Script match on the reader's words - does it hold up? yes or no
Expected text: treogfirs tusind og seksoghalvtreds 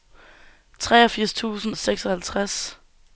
yes